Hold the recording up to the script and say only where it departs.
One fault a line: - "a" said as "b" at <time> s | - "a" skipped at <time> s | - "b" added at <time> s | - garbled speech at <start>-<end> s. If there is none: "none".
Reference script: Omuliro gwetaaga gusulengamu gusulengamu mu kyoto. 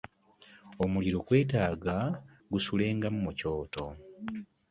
- "gusulengamu" skipped at 3.2 s